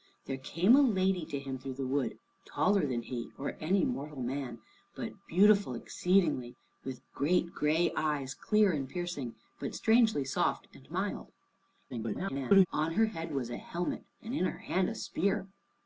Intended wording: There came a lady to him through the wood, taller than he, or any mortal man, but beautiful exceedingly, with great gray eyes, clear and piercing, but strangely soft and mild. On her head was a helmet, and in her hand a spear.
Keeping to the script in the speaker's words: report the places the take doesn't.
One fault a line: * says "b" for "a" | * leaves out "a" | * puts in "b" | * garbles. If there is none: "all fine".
* garbles